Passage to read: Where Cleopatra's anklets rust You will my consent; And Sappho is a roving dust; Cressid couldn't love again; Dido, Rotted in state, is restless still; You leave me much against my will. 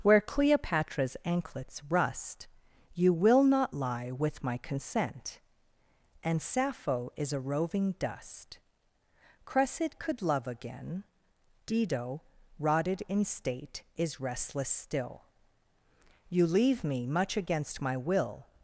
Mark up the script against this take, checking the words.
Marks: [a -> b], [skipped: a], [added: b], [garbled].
Where Cleopatra's anklets rust You will [added: not lie with] my consent; And Sappho is a roving dust; Cressid [couldn't -> could] love again; Dido, Rotted in state, is restless still; You leave me much against my will.